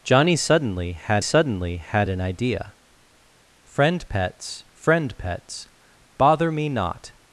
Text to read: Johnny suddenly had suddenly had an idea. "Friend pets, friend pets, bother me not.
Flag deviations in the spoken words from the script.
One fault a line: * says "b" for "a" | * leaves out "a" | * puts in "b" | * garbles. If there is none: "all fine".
all fine